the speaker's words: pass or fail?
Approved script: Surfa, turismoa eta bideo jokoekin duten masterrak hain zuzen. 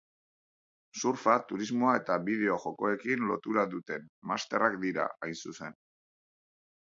fail